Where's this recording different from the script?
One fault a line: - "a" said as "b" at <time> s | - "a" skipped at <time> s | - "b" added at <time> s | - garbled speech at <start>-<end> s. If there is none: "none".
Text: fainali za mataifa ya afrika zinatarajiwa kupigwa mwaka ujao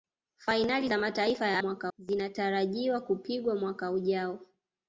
- "afrika" said as "mwaka" at 1.6 s